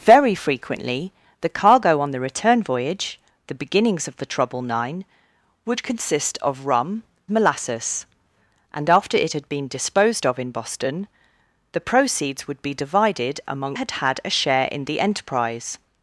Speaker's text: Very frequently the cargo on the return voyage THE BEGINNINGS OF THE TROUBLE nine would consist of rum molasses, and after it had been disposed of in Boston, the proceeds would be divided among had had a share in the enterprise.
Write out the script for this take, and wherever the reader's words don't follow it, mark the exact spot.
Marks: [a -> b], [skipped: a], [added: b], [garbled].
Very frequently the cargo on the return voyage THE BEGINNINGS OF THE TROUBLE nine would consist of rum molasses, and after it had been disposed of in Boston, the proceeds would be divided among had had a share in the enterprise.